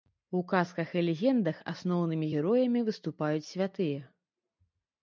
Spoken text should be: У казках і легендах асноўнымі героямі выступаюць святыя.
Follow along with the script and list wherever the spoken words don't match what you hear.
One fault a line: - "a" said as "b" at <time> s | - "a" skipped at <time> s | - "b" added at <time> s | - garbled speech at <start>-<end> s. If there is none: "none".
none